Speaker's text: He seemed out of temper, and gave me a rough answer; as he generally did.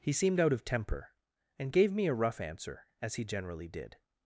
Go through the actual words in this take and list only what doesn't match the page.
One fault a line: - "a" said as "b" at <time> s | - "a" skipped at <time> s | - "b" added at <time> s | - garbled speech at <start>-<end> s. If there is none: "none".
none